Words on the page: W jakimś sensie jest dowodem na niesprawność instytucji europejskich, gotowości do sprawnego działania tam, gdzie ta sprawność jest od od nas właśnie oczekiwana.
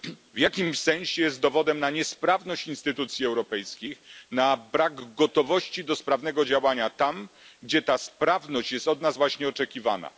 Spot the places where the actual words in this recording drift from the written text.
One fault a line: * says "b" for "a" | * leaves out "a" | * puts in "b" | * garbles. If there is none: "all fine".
* puts in "na brak"
* leaves out "od"